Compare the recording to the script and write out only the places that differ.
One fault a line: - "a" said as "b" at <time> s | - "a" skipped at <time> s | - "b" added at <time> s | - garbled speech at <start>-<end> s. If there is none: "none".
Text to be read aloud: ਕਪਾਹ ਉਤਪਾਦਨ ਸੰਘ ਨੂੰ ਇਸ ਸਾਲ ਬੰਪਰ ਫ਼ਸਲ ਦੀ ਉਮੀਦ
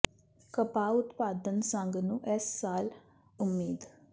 - "ਬੰਪਰ ਫ਼ਸਲ ਦੀ" skipped at 2.9 s